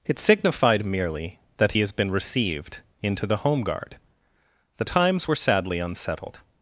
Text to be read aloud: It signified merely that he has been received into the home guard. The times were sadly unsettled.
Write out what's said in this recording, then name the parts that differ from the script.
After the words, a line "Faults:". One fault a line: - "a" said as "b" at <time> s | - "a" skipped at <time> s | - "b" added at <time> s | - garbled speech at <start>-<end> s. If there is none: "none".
It signified merely that he has been received into the home guard. The times were sadly unsettled.
Faults:
none